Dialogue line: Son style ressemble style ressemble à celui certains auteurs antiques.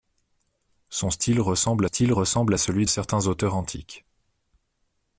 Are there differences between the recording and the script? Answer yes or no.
no